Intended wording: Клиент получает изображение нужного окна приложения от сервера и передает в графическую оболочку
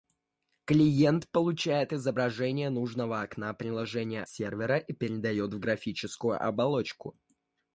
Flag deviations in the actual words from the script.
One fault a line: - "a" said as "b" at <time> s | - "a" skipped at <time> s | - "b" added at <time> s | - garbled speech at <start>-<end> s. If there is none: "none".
- "от" skipped at 4.2 s